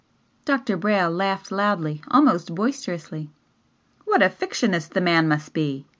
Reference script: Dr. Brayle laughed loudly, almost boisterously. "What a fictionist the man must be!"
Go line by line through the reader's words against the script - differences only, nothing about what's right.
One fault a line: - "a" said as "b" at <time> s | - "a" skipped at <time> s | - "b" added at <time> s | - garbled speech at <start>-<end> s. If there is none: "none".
none